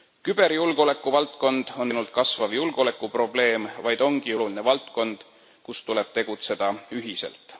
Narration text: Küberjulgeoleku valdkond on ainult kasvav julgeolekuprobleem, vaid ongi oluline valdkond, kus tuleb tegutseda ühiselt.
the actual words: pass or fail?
pass